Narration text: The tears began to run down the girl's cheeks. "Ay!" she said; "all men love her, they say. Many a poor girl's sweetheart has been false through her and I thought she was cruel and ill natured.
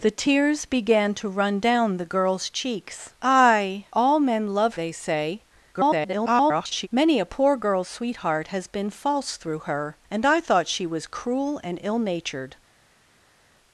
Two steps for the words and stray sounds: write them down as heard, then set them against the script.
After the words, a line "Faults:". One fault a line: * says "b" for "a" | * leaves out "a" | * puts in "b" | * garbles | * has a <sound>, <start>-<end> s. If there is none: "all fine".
The tears began to run down the girl's cheeks. "Ay; "all men love they say. [garbled] Many a poor girl's sweetheart has been false through her and I thought she was cruel and ill natured.
Faults:
* leaves out "she said"
* leaves out "her"
* garbles